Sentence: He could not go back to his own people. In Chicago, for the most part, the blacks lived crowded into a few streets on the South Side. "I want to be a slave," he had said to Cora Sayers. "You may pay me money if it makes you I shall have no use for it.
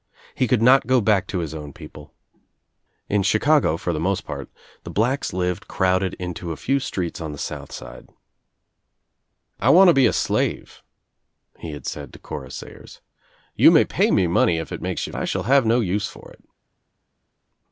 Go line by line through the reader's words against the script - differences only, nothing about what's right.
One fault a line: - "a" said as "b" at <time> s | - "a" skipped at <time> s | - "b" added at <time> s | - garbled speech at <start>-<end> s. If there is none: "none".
none